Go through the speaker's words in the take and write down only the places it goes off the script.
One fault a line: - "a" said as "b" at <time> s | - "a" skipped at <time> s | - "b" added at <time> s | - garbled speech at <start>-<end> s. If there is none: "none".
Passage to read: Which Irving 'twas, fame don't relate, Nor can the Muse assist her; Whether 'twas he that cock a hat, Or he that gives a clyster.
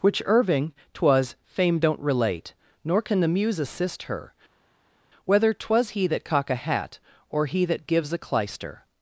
none